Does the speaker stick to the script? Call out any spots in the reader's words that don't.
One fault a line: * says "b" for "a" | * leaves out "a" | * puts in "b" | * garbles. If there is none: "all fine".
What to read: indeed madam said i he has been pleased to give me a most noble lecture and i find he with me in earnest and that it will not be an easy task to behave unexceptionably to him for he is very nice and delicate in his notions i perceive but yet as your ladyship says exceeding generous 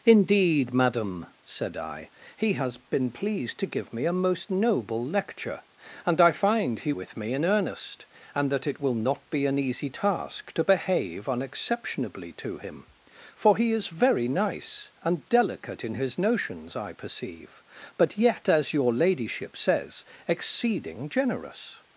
all fine